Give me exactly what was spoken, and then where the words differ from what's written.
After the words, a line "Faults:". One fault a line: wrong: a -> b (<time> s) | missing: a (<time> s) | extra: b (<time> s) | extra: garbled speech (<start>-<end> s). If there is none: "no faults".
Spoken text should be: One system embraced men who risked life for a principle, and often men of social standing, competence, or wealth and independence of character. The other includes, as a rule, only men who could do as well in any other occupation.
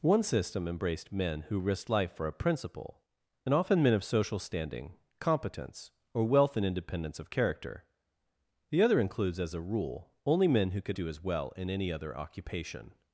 One system embraced men who risked life for a principle, and often men of social standing, competence, or wealth and independence of character. The other includes, as a rule, only men who could do as well in any other occupation.
Faults:
no faults